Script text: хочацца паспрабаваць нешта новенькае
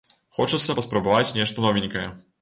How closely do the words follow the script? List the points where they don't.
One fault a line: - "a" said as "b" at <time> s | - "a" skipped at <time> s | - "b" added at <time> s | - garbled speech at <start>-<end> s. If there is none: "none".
none